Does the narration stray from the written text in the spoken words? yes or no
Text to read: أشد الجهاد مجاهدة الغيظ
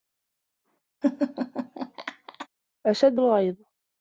yes